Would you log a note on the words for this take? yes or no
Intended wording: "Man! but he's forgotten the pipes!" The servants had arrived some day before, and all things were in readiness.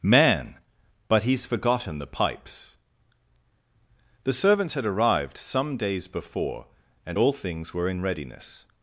yes